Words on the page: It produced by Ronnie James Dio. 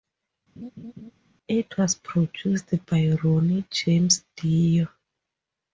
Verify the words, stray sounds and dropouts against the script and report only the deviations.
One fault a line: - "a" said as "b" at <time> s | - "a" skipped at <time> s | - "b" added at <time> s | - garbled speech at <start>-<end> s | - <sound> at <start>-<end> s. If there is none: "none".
- laugh at 0.6-1.1 s
- "was" added at 1.7 s